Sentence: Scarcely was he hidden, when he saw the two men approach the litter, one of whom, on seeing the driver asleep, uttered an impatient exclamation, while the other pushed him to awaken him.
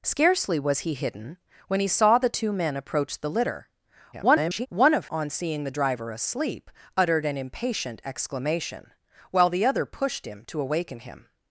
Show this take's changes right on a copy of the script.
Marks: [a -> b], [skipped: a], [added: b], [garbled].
Scarcely was he hidden, when he saw the two men approach the litter, [garbled] one of [skipped: whom,] on seeing the driver asleep, uttered an impatient exclamation, while the other pushed him to awaken him.